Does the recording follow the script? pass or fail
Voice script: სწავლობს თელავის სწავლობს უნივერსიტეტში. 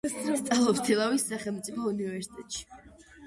fail